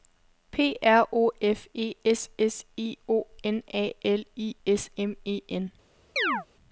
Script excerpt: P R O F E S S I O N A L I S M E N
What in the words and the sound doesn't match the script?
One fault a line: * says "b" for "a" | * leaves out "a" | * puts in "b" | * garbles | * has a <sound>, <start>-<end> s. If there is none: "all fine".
* has a chirp, 6.2-6.5 s